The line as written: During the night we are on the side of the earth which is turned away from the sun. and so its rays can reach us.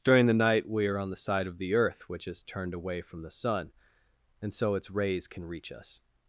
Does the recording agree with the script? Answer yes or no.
yes